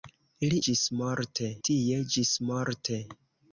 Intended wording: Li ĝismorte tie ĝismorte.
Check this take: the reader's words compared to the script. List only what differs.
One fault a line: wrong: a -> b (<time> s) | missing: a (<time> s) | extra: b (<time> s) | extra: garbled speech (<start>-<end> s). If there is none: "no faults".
no faults